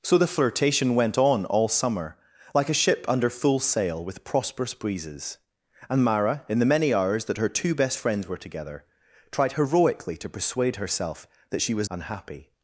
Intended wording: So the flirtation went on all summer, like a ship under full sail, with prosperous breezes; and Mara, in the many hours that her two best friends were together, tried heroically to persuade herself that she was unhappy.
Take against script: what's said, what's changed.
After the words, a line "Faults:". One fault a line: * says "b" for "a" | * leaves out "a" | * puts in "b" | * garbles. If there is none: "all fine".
So the flirtation went on all summer, like a ship under full sail, with prosperous breezes; and Mara, in the many hours that her two best friends were together, tried heroically to persuade herself that she was unhappy.
Faults:
all fine